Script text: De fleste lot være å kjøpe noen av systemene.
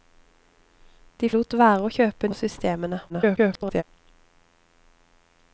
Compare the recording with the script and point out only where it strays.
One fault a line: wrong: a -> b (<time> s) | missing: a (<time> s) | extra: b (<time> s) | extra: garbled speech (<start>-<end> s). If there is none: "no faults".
missing: fleste (1.3 s)
missing: noen (2.3 s)
extra: garbled speech (3.1-3.8 s)